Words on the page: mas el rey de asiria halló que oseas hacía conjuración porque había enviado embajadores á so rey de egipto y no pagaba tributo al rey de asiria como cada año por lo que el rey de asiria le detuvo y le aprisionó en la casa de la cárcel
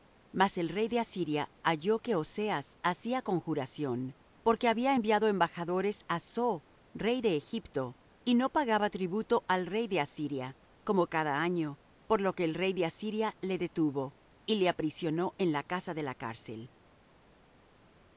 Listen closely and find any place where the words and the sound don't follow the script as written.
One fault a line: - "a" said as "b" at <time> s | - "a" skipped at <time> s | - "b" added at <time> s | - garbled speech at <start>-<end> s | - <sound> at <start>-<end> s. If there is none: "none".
none